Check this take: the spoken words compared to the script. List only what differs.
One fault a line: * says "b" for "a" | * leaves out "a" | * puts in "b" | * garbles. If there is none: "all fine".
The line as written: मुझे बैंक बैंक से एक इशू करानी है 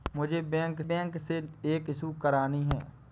all fine